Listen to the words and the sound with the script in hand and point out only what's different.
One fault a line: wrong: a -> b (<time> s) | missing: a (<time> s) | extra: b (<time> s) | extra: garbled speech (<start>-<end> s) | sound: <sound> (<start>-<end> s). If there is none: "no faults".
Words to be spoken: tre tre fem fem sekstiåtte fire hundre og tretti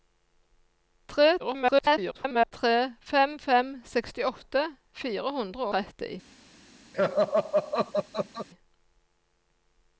extra: garbled speech (1.4-2.5 s)
missing: og (5.7 s)
sound: laugh (6.9-8.5 s)